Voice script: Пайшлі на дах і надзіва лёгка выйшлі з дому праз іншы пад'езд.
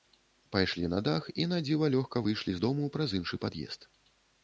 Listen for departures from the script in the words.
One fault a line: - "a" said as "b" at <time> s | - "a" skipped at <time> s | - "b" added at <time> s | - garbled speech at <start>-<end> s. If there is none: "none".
none